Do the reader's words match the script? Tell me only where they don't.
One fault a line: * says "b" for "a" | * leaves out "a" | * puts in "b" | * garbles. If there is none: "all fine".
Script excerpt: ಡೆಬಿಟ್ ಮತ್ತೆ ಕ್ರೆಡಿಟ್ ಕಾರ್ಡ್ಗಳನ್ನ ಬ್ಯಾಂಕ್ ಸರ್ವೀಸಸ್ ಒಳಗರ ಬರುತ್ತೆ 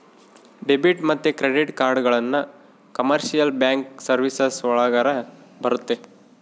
* puts in "ಕಮರ್ಶಿಯಲ್"